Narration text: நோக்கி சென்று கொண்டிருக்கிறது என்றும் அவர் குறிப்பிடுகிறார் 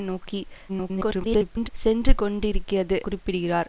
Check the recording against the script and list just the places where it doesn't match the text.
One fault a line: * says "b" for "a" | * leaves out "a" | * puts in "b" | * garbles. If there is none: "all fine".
* garbles
* leaves out "என்றும் அவர்"